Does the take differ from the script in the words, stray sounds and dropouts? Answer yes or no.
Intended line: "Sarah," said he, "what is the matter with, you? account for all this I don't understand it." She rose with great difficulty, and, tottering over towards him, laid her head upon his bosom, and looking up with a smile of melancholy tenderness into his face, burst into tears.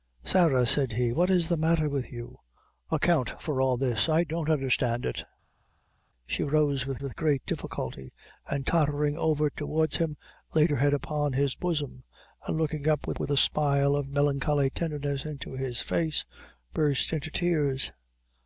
yes